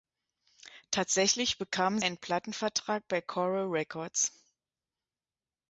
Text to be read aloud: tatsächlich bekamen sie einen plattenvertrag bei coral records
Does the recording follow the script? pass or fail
fail